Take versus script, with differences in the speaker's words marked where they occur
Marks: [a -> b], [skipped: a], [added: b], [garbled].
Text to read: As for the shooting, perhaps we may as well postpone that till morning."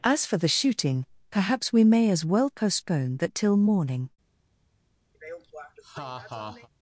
As for the shooting, perhaps we may as well postpone that till morning."